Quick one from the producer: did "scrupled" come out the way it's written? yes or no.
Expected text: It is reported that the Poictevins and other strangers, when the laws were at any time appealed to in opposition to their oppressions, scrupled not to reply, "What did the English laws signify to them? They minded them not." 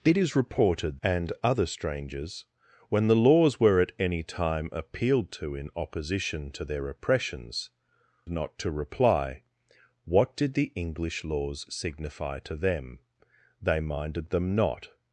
no